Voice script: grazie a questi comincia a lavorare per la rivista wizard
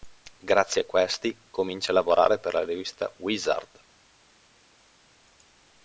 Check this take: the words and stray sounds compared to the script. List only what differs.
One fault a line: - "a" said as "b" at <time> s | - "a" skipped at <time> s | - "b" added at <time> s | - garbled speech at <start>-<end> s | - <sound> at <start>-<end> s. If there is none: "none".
none